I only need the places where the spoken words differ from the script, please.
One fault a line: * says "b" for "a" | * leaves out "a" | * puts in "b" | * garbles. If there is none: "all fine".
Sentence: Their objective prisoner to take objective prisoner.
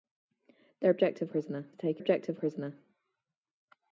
all fine